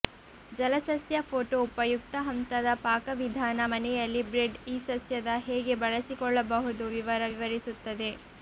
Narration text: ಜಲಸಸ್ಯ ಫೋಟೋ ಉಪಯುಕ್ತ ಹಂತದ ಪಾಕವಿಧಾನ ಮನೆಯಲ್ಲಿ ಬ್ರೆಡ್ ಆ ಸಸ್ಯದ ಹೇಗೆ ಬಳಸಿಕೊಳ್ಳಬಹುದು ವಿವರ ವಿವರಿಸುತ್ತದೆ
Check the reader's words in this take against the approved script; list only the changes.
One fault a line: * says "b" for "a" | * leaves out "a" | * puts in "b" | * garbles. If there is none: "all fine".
* says "ಈ" for "ಆ"